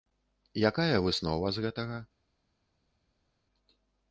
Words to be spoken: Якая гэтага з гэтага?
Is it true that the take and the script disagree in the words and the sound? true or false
true